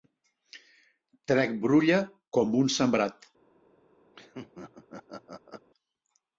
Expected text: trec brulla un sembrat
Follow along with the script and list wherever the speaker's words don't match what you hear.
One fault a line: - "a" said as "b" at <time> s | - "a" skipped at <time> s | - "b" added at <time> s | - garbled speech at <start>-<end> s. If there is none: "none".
- "com" added at 2.4 s